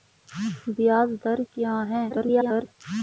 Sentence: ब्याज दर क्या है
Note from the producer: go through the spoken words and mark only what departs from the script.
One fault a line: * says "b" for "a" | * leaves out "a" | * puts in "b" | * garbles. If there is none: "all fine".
* garbles